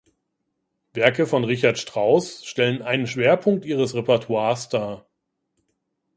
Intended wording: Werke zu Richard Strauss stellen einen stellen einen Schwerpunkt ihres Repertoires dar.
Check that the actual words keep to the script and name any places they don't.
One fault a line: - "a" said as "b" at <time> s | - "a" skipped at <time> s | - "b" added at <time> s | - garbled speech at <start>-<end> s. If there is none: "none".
- "zu" said as "von" at 1.3 s
- "stellen einen" skipped at 3.0 s